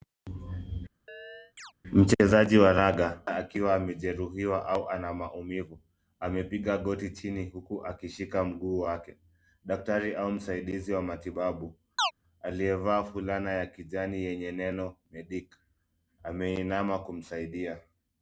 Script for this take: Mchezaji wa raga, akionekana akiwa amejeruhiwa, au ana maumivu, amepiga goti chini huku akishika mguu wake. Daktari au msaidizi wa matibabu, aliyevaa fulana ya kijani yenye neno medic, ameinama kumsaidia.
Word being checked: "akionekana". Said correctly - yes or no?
no